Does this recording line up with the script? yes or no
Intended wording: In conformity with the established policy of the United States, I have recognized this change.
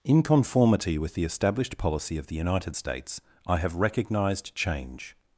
no